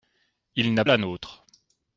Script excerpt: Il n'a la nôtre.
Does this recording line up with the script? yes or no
yes